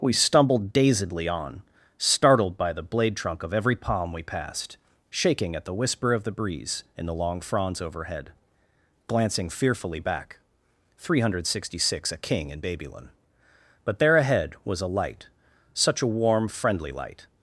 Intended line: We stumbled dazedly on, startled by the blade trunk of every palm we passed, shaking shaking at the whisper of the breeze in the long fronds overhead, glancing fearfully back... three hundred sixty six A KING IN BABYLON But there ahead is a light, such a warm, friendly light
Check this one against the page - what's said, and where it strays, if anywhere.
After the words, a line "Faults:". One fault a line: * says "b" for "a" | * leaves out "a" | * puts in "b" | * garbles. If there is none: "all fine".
We stumbled dazedly on, startled by the blade trunk of every palm we passed, shaking at the whisper of the breeze in the long fronds overhead, glancing fearfully back... three hundred sixty six A KING IN BABYLON But there ahead was a light, such a warm, friendly light
Faults:
* leaves out "shaking"
* says "was" for "is"